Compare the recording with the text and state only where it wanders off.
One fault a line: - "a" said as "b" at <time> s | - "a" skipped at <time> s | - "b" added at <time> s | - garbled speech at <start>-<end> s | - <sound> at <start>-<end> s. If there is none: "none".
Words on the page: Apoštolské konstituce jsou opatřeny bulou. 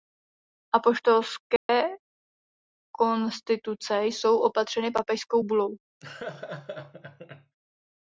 - dropout at 1.6-1.7 s
- "papežskou" added at 4.9 s
- laugh at 6.0-7.6 s